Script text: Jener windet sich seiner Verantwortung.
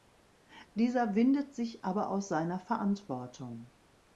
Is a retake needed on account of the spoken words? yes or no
yes